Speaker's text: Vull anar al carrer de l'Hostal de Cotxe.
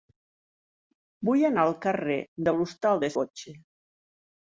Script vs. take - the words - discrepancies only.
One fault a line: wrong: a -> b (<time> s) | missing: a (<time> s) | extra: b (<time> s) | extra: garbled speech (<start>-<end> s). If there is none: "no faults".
no faults